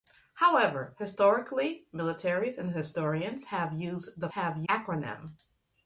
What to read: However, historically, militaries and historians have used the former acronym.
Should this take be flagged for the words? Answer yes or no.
yes